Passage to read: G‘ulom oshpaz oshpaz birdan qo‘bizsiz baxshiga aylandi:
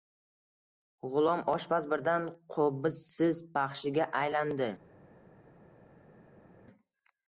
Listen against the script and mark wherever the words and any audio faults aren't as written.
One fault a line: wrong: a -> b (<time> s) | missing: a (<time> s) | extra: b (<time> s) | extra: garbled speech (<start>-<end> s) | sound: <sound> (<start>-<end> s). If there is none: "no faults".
missing: oshpaz (1.9 s)